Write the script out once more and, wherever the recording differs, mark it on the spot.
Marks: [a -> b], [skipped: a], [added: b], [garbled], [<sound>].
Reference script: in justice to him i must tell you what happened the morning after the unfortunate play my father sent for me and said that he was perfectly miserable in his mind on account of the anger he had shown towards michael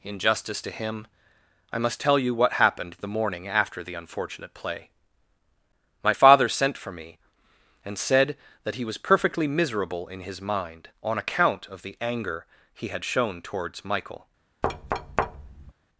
in justice to him i must tell you what happened the morning after the unfortunate play my father sent for me and said that he was perfectly miserable in his mind on account of the anger he had shown towards michael [thud]